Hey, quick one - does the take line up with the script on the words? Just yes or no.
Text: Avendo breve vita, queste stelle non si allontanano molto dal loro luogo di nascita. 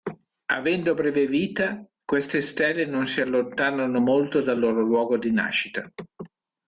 yes